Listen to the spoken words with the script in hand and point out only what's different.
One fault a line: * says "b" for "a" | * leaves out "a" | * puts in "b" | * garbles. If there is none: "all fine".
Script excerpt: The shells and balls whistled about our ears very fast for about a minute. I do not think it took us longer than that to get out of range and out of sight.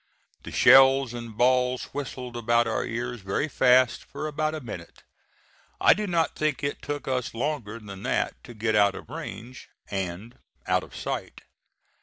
all fine